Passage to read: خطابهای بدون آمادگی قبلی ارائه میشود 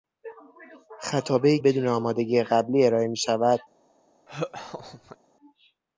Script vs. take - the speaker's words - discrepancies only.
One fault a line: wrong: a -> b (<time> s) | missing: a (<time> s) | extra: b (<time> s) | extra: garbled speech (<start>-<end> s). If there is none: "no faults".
no faults